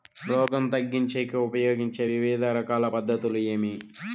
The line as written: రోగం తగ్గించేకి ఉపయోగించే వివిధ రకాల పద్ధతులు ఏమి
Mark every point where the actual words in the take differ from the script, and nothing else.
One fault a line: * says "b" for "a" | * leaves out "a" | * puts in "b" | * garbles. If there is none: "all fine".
all fine